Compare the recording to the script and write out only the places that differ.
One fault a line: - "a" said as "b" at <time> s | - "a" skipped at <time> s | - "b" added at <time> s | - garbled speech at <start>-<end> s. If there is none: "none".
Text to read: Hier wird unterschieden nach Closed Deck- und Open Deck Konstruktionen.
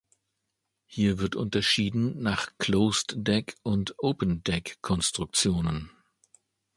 none